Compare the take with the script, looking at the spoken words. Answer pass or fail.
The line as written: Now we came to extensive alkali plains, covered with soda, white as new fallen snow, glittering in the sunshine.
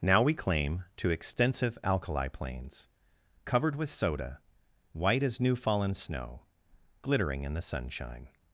fail